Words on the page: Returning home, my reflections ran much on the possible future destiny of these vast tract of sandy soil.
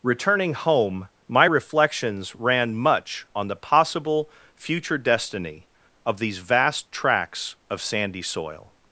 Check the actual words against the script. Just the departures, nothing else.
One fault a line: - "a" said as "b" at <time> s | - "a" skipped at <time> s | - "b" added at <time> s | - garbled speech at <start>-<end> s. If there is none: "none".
- "tract" said as "tracts" at 6.9 s